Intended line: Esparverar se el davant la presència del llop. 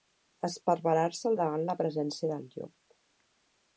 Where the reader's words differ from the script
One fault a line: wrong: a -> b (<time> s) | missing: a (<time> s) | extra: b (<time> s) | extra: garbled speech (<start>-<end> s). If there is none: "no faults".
no faults